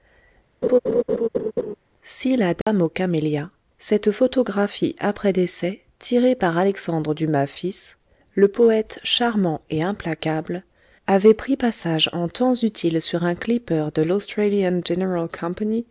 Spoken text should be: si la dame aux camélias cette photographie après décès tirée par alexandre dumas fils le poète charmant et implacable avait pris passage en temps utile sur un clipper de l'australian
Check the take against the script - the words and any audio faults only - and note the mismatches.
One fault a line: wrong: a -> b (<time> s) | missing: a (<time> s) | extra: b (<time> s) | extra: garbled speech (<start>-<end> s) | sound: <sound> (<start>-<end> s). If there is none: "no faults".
sound: laugh (0.6-1.8 s)
sound: dropout (2.6-2.7 s)